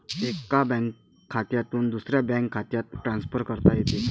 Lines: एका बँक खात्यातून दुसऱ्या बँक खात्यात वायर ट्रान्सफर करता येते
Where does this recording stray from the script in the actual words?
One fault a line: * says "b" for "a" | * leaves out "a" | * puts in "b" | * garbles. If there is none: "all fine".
* leaves out "वायर"